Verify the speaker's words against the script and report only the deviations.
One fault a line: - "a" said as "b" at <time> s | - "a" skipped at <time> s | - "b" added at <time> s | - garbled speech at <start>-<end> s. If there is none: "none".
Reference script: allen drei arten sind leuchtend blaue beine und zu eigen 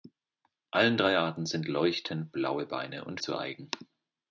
none